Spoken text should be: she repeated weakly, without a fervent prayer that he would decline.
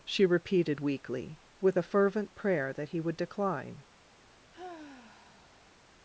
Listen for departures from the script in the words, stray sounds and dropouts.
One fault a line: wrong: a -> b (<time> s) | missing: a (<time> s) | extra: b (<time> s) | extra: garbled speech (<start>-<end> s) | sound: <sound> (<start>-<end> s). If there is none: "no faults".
wrong: without -> with (1.6 s)
sound: sigh (4.5-5.8 s)